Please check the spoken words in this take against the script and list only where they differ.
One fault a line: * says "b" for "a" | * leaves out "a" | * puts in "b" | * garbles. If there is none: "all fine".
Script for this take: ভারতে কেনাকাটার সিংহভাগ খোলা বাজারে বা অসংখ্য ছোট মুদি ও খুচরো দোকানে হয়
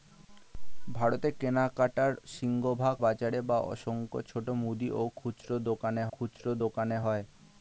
* leaves out "খোলা"
* puts in "খুচরো দোকানে"